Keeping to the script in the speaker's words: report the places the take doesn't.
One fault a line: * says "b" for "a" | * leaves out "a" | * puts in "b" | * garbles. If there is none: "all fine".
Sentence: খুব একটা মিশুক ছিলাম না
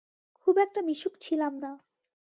all fine